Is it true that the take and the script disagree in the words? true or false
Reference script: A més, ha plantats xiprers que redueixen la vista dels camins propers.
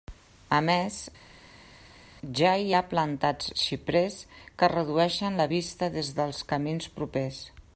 true